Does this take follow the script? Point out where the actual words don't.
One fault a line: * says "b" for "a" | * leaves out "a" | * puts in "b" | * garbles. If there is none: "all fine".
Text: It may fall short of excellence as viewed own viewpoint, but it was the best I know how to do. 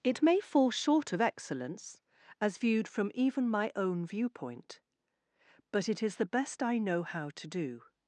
* puts in "from even my"
* says "is" for "was"